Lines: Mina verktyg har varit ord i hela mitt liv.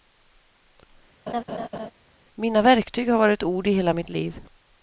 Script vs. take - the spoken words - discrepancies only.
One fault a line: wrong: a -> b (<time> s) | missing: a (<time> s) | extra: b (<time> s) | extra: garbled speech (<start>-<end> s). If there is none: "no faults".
no faults